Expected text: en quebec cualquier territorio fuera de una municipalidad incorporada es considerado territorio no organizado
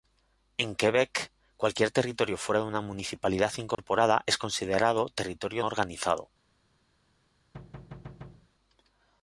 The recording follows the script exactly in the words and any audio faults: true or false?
false